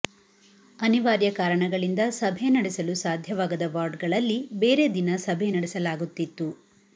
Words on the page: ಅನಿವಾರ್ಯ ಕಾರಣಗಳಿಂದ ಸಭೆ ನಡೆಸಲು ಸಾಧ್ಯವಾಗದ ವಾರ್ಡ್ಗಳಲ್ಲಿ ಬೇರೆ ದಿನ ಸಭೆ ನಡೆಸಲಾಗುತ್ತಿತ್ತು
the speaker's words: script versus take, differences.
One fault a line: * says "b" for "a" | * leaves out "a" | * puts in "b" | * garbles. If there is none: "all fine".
all fine